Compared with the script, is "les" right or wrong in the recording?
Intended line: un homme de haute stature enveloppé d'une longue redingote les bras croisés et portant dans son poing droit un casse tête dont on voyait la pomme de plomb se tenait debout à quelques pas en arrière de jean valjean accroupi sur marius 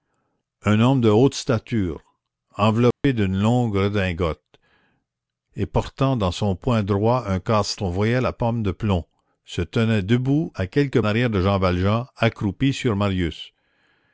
wrong